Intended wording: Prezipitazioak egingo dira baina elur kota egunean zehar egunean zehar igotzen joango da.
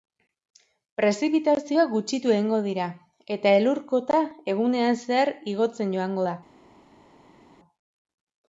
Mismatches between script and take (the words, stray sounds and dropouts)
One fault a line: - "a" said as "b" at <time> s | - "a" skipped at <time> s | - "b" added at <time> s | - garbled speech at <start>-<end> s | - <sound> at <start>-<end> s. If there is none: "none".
- "gutxitu" added at 1.9 s
- "baina" said as "eta" at 3.4 s
- "egunean zehar" skipped at 5.3 s